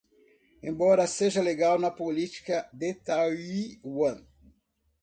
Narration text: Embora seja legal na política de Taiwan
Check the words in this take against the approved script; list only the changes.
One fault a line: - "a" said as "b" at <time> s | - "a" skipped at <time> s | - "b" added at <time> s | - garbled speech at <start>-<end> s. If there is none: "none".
none